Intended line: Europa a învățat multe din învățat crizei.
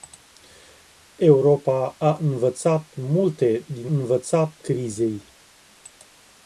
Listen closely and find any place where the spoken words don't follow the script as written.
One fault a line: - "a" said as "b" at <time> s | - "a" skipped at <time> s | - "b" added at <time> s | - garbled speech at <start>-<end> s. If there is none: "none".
none